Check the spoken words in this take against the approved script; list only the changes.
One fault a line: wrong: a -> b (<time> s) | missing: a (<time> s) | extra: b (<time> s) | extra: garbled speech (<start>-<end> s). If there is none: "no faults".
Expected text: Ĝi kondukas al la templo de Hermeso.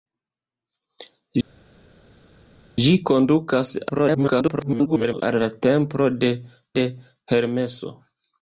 extra: garbled speech (3.9-5.2 s)
extra: de (6.8 s)